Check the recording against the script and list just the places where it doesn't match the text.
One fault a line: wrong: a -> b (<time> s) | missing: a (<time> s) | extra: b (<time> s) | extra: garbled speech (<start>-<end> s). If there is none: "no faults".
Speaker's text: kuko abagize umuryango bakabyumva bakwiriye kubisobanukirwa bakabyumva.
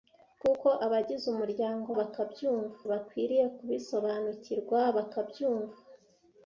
no faults